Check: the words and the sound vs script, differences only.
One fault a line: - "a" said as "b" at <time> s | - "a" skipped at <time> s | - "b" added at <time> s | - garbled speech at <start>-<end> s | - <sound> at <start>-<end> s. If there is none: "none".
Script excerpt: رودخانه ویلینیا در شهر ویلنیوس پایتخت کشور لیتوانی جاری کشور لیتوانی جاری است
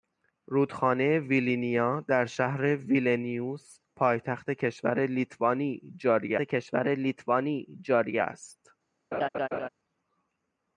- laugh at 9.1-9.7 s